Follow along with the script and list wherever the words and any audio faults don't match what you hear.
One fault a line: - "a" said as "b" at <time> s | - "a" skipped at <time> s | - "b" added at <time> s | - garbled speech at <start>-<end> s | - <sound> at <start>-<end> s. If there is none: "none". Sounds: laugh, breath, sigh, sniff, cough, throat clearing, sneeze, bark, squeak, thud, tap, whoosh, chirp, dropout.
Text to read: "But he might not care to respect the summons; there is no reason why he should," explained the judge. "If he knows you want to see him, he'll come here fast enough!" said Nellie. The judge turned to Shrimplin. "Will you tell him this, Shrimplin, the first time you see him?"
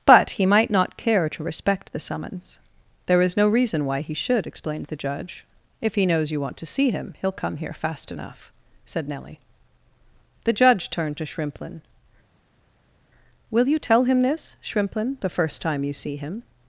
none